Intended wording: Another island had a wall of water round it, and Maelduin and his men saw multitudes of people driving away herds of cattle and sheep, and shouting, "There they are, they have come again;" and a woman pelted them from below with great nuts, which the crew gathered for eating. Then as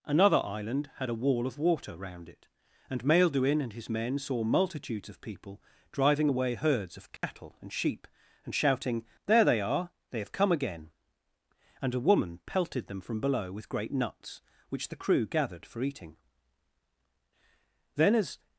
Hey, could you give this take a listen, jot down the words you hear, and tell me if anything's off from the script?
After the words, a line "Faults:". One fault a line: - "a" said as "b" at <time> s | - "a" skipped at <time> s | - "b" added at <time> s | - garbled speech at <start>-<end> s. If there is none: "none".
Another island had a wall of water round it, and Maelduin and his men saw multitudes of people driving away herds of cattle and sheep, and shouting, "There they are, they have come again;" and a woman pelted them from below with great nuts, which the crew gathered for eating. Then as
Faults:
none